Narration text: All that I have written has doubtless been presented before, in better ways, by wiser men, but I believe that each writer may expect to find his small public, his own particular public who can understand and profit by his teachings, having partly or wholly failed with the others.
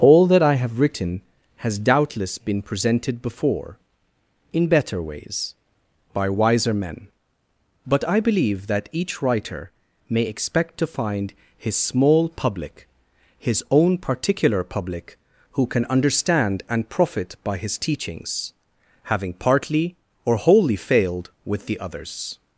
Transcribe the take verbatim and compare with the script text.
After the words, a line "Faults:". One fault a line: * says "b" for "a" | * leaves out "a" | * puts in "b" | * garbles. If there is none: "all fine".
All that I have written has doubtless been presented before, in better ways, by wiser men, but I believe that each writer may expect to find his small public, his own particular public who can understand and profit by his teachings, having partly or wholly failed with the others.
Faults:
all fine